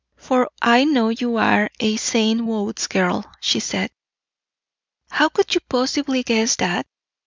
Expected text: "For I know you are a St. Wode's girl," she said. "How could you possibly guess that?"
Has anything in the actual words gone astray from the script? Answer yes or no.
no